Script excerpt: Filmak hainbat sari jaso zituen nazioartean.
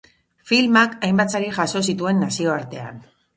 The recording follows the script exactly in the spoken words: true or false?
true